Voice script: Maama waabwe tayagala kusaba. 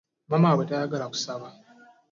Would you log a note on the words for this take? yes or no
no